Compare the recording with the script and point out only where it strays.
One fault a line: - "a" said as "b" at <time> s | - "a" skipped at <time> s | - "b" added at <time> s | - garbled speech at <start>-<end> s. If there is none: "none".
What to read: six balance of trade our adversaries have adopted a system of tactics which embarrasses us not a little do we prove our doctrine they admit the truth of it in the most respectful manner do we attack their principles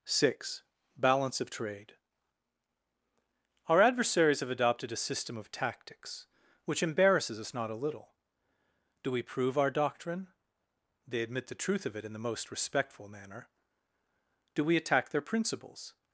none